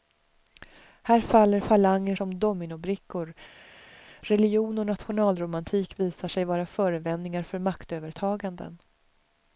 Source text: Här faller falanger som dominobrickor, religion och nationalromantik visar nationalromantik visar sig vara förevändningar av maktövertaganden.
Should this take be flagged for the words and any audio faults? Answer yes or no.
yes